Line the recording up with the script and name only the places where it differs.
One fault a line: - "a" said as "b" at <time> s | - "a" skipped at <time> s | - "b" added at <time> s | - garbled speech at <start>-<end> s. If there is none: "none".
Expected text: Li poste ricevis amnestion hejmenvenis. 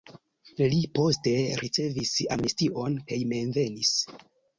none